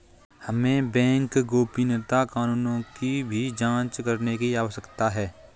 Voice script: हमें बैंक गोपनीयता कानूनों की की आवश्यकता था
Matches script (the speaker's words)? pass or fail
fail